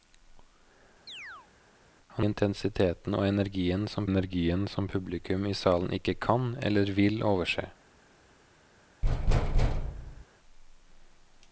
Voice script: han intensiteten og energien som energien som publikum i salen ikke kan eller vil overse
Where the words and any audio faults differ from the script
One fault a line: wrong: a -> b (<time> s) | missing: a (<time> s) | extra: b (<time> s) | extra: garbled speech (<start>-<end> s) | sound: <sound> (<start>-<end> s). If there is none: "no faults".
sound: chirp (1.1-1.5 s)
sound: thud (9.0-10.3 s)